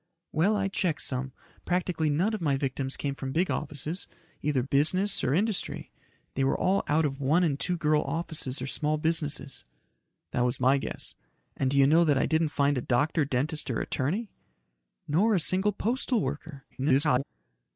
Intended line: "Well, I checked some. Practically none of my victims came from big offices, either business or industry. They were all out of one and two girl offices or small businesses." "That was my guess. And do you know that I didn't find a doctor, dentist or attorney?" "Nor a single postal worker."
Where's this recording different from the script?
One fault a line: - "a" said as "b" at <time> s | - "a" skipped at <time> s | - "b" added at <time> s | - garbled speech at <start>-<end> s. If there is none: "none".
- garbled speech at 16.7-17.2 s